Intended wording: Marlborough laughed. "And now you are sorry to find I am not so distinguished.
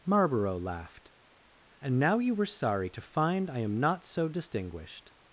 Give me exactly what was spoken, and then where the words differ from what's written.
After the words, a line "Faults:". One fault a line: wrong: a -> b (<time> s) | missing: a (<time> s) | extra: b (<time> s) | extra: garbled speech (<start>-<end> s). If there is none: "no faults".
Marlborough laughed. "And now you were sorry to find I am not so distinguished.
Faults:
wrong: are -> were (2.3 s)